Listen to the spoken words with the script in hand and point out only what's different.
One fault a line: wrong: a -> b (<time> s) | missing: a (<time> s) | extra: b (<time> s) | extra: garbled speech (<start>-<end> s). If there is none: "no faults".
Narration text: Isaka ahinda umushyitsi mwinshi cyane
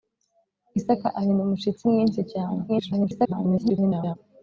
extra: garbled speech (2.7-4.2 s)